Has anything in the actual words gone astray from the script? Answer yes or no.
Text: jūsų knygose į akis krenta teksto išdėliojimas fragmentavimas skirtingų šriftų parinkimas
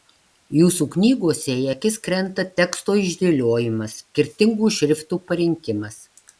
yes